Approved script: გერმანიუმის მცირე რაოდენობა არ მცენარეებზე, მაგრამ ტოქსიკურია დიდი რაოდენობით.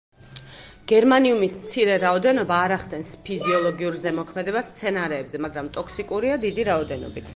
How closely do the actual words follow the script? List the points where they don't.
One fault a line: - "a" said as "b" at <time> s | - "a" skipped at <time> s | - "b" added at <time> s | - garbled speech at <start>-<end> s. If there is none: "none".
- "ახდენს ფიზიოლოგიურ ზემოქმედებას" added at 2.8 s